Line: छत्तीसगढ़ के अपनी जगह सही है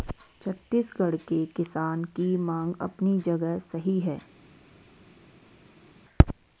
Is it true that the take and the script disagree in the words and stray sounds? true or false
true